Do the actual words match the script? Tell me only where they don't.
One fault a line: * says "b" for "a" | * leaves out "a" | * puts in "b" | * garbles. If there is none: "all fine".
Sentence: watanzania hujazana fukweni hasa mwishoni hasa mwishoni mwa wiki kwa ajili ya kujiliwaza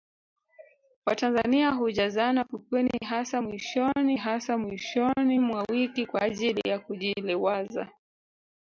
all fine